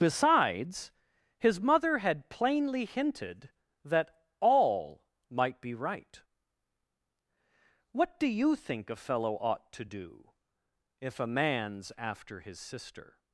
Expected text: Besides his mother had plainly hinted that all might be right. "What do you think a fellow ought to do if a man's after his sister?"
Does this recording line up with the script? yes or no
yes